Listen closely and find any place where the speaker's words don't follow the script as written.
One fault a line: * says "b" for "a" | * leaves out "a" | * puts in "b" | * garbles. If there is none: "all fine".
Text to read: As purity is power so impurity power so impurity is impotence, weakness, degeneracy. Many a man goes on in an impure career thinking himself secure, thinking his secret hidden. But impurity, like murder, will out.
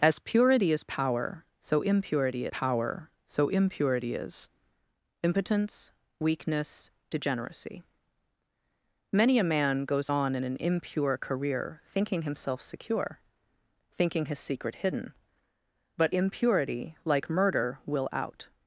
all fine